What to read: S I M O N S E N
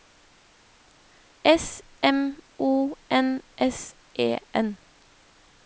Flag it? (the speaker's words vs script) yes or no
yes